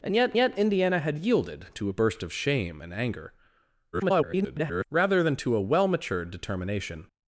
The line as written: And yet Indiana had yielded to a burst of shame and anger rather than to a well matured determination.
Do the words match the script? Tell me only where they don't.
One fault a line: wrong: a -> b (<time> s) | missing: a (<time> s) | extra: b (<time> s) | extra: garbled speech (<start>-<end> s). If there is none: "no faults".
extra: yet (0.4 s)
extra: garbled speech (3.9-4.8 s)